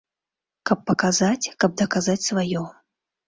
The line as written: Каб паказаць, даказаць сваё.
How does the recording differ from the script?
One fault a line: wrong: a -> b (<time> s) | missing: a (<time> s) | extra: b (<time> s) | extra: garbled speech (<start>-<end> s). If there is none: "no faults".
extra: каб (1.6 s)